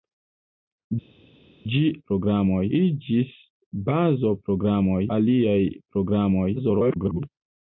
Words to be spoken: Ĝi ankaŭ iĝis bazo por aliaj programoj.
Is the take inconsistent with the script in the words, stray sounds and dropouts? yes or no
yes